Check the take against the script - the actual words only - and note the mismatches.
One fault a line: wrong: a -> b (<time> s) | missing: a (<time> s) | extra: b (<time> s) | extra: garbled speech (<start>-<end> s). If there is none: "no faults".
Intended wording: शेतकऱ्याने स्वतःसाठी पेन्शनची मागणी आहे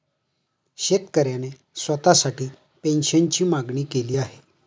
extra: केली (3.8 s)